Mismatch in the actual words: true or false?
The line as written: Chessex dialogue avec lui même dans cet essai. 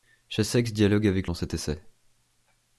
true